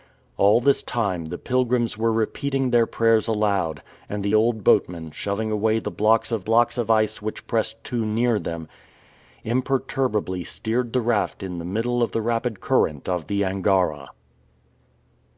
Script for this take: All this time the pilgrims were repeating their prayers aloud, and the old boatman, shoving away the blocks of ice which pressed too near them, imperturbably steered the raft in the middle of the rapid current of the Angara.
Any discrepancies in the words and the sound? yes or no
yes